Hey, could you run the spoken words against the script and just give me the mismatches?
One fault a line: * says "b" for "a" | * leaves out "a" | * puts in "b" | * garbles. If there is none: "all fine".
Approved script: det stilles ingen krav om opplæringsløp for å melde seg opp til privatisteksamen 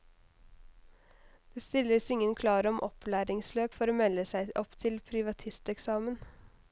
all fine